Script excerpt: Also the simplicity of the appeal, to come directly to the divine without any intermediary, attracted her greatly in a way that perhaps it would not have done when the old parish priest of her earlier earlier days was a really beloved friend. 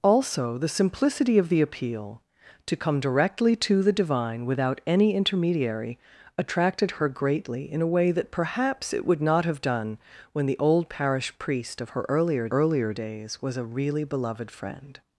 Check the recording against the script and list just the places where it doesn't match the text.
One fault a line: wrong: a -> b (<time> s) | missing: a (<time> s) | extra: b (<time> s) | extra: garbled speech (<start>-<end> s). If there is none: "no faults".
no faults